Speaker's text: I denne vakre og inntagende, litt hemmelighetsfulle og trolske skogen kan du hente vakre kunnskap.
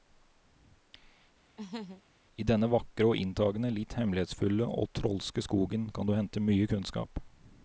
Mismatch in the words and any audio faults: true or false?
true